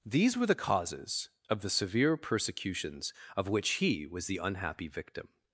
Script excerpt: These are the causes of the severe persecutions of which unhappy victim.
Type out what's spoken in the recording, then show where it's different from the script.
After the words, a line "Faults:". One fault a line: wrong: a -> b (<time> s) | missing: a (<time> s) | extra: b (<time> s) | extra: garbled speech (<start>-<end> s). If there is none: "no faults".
These were the causes of the severe persecutions of which he was the unhappy victim.
Faults:
wrong: are -> were (0.3 s)
extra: he was the (3.7 s)